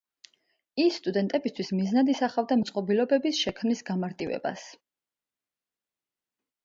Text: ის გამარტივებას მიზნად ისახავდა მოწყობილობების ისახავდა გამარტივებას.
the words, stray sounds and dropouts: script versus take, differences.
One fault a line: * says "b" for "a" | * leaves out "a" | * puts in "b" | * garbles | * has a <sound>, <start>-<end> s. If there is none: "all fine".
* says "სტუდენტებისთვის" for "გამარტივებას"
* says "შექმნის" for "ისახავდა"